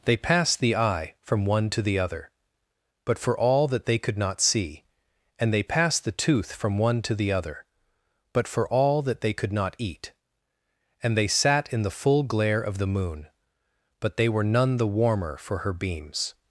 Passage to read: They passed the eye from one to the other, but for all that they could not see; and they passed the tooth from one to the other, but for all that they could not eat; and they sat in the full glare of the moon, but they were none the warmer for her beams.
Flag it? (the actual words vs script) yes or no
no